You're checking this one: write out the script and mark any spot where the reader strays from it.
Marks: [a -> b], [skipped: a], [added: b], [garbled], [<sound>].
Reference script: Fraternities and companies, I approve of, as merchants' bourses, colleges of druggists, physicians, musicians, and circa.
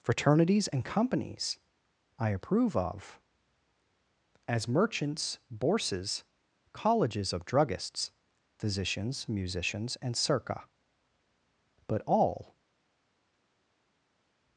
Fraternities and companies, I approve of, as merchants' bourses, colleges of druggists, physicians, musicians, and circa. [added: but all]